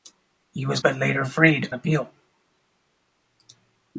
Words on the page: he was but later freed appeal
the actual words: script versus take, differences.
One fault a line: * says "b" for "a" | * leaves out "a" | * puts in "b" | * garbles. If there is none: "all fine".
all fine